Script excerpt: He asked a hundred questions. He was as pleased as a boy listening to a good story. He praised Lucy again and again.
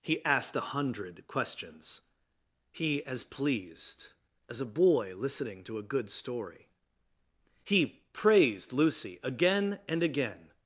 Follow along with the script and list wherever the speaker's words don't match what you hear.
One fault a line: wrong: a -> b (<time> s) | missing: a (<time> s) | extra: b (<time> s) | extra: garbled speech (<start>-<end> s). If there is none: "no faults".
missing: was (3.0 s)